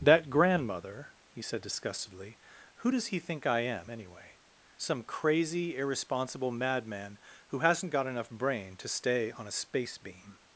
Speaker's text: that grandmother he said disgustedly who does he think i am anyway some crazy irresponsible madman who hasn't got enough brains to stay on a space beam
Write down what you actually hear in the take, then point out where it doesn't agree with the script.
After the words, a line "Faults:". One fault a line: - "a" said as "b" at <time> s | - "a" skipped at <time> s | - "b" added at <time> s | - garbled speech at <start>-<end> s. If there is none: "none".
that grandmother he said disgustedly who does he think i am anyway some crazy irresponsible madman who hasn't got enough brain to stay on a space beam
Faults:
- "brains" said as "brain" at 8.3 s